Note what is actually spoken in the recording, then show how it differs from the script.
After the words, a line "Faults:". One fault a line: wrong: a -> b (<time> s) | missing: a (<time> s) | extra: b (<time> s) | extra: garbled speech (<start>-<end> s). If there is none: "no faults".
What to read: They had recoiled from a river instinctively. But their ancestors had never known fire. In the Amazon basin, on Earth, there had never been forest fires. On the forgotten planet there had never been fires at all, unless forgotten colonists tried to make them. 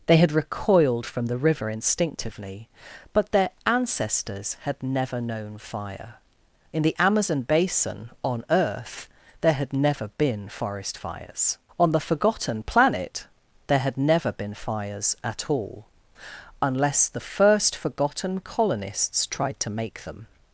They had recoiled from the river instinctively. But their ancestors had never known fire. In the Amazon basin, on Earth, there had never been forest fires. On the forgotten planet there had never been fires at all, unless the first forgotten colonists tried to make them.
Faults:
wrong: a -> the (1.3 s)
extra: the first (17.1 s)